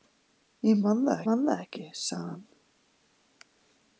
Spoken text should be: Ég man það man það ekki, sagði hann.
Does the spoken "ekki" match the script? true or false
true